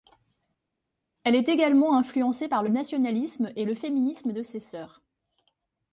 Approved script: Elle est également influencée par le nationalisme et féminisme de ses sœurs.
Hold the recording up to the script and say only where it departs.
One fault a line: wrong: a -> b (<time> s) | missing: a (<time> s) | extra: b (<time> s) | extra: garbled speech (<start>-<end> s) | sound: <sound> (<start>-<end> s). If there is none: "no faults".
extra: le (3.6 s)